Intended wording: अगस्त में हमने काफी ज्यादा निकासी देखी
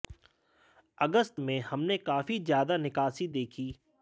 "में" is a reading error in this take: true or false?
false